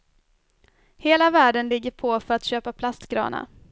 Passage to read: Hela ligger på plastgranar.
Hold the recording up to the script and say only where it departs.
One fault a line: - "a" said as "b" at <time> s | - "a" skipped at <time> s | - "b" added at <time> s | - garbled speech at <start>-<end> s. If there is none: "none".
- "världen" added at 1.3 s
- "för att köpa" added at 2.2 s